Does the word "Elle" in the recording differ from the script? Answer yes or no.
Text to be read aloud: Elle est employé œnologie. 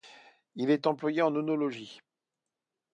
yes